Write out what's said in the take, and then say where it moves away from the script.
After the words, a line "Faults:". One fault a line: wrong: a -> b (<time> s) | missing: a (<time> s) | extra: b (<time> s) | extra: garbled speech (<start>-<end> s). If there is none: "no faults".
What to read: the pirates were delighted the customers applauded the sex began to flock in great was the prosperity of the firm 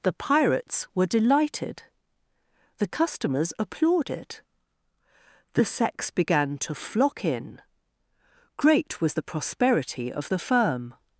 the pirates were delighted the customers applauded the sex began to flock in great was the prosperity of the firm
Faults:
no faults